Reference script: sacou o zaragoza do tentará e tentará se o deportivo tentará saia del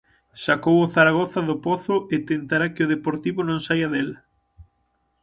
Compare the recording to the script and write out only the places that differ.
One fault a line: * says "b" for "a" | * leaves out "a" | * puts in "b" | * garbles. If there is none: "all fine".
* says "pozo" for "tentará"
* says "que" for "se"
* says "non" for "tentará"